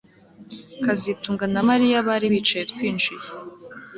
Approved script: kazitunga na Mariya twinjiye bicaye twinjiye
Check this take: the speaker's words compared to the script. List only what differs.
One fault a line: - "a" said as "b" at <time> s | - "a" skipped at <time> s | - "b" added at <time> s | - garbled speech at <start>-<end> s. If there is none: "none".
- "twinjiye" said as "bari" at 2.1 s